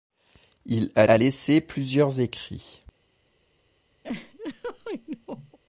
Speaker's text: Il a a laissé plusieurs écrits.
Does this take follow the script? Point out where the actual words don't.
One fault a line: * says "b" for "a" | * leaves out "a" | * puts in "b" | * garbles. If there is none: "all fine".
all fine